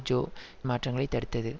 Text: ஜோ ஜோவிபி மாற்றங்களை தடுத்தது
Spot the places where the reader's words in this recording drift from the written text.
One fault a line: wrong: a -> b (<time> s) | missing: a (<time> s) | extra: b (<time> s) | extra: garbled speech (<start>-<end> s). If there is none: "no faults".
missing: ஜோவிபி (0.2 s)